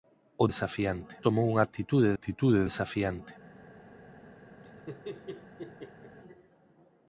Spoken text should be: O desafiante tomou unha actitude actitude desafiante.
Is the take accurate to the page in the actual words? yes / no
yes